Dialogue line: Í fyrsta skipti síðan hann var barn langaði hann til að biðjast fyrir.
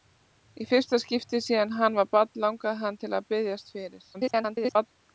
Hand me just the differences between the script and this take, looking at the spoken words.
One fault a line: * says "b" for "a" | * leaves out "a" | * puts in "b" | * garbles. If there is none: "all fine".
* garbles